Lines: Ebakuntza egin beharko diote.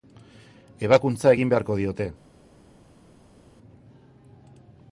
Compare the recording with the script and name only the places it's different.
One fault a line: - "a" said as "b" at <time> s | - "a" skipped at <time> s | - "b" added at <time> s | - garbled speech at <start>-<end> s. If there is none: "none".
none